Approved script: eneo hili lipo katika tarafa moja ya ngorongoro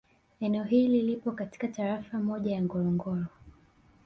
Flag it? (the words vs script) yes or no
no